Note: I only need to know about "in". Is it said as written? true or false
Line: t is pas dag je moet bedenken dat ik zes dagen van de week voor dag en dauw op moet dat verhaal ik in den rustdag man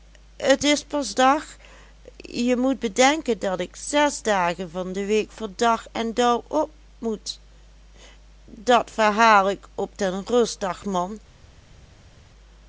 false